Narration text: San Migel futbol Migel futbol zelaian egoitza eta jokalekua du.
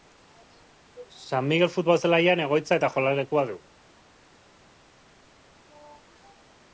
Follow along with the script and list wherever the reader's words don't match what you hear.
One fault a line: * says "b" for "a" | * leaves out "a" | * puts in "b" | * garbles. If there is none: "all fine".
* leaves out "Migel futbol"